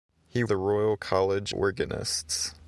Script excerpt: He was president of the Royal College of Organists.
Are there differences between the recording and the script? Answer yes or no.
yes